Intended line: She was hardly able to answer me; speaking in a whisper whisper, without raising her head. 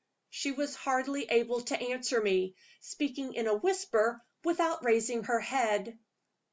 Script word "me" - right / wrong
right